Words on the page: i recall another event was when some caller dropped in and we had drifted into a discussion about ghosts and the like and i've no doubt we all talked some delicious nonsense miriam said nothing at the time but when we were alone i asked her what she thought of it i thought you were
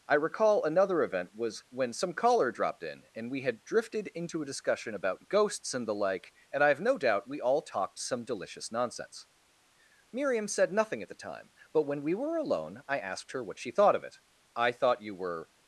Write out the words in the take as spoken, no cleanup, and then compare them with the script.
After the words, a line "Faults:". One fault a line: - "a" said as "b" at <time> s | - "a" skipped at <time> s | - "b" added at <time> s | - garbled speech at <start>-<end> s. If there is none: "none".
i recall another event was when some caller dropped in and we had drifted into a discussion about ghosts and the like and i've no doubt we all talked some delicious nonsense miriam said nothing at the time but when we were alone i asked her what she thought of it i thought you were
Faults:
none